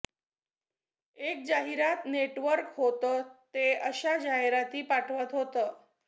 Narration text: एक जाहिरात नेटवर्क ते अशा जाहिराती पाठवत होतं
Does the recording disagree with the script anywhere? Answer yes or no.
yes